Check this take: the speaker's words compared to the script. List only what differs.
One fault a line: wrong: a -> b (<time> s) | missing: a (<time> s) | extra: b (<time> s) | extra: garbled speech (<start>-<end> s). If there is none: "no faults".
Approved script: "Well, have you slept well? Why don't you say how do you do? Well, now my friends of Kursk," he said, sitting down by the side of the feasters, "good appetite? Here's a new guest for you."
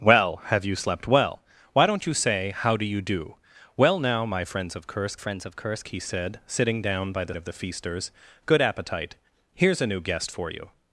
extra: friends of Kursk (5.2 s)
missing: side (7.4 s)